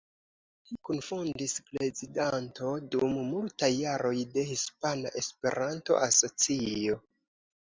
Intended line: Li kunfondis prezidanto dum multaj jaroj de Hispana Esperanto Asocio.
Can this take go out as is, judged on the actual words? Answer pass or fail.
pass